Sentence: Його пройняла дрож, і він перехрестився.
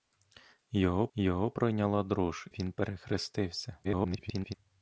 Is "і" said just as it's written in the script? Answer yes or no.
no